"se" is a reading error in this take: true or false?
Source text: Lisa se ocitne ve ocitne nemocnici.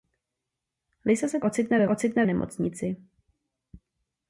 false